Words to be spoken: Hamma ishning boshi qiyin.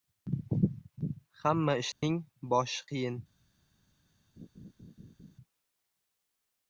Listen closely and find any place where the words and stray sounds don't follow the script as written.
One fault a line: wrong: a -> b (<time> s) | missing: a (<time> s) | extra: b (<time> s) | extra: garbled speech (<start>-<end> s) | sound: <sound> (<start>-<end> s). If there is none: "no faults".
sound: dropout (1.9-2.0 s)
sound: laugh (4.4-5.4 s)